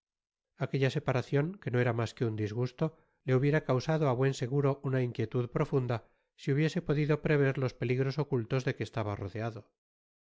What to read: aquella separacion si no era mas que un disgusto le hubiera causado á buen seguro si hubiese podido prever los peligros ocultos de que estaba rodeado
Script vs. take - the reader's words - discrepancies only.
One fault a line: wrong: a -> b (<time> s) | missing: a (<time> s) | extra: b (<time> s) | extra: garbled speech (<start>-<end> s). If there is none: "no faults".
wrong: si -> que (1.6 s)
extra: una inquietud profunda (4.9 s)